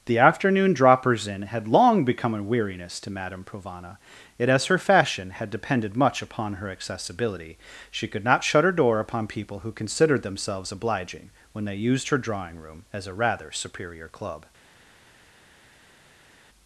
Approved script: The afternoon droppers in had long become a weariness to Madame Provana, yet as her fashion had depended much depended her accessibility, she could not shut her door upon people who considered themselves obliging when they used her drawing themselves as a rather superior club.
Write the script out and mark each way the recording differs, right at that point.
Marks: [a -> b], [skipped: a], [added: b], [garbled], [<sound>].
The afternoon droppers in had long become a weariness to Madame Provana, yet as her fashion had depended much [depended -> upon] her accessibility, she could not shut her door upon people who considered themselves obliging when they used her drawing [themselves -> room] as a rather superior club.